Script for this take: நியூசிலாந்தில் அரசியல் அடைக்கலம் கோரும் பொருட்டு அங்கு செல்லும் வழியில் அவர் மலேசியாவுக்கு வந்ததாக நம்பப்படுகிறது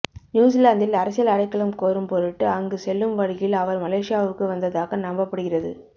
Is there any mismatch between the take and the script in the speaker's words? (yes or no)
no